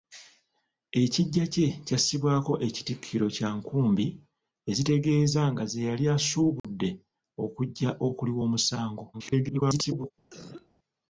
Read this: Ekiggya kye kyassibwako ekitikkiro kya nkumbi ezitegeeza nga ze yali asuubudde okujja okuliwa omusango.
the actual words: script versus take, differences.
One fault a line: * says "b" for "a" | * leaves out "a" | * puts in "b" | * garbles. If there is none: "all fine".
* garbles